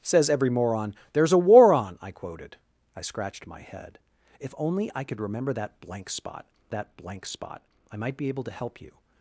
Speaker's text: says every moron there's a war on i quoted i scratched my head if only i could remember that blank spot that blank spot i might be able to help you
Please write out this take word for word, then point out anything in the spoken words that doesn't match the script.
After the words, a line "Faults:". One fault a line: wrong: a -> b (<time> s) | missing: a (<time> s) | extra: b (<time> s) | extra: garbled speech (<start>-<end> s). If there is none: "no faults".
says every moron there's a war on i quoted i scratched my head if only i could remember that blank spot that blank spot i might be able to help you
Faults:
no faults